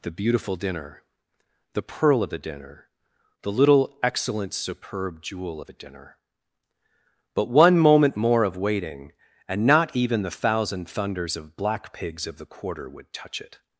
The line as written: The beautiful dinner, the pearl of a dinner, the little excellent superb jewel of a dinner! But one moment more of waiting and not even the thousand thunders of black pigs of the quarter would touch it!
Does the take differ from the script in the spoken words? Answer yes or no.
yes